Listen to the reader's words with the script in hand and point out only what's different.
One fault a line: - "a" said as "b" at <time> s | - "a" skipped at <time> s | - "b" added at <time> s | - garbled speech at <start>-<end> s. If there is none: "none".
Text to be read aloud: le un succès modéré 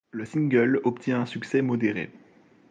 - "single obtient" added at 0.2 s